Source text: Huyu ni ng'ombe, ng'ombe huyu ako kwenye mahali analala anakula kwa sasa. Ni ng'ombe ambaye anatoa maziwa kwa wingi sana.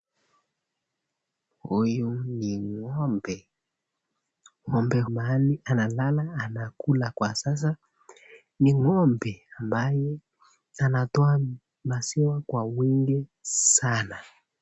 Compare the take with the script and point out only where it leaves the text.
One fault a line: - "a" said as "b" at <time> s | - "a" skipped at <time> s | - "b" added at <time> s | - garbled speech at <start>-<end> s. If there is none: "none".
- "huyu ako kwenye" skipped at 5.0 s